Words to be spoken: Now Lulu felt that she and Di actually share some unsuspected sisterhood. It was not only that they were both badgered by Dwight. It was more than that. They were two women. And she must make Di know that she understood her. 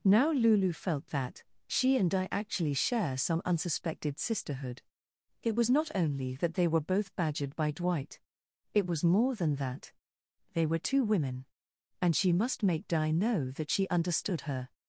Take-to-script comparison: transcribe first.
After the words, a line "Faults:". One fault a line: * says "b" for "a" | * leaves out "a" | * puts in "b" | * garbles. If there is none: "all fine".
Now Lulu felt that she and Di actually share some unsuspected sisterhood. It was not only that they were both badgered by Dwight. It was more than that. They were two women. And she must make Di know that she understood her.
Faults:
all fine